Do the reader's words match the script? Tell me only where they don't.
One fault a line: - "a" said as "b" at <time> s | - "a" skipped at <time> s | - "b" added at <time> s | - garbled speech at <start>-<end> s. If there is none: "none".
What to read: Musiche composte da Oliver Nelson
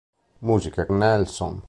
- "composte da Oliver" skipped at 0.9 s